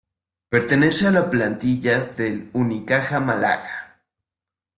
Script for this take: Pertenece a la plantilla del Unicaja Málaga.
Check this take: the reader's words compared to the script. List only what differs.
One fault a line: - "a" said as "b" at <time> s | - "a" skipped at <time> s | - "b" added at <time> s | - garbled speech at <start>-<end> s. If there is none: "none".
none